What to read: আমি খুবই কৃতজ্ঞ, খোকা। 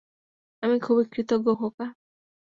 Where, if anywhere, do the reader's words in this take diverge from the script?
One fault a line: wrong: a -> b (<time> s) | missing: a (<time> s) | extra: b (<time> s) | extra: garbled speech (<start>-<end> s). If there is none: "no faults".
no faults